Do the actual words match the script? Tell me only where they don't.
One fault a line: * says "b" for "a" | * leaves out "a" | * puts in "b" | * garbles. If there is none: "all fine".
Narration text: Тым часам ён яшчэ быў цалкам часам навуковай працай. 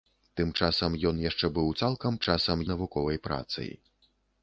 all fine